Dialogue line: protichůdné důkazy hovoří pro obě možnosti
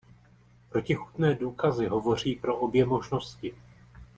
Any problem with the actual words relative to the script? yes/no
no